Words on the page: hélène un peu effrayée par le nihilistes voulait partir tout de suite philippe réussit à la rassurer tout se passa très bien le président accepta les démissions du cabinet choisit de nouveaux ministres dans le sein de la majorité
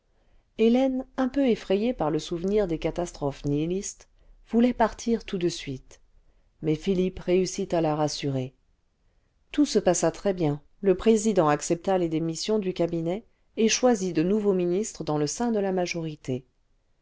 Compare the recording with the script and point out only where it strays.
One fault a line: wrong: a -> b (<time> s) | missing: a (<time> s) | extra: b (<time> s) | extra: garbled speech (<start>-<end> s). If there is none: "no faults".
extra: souvenir des catastrophes (2.2 s)
extra: mais (6.6 s)
extra: et (13.6 s)